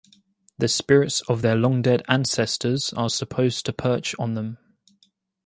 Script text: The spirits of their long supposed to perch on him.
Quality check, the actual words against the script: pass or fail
fail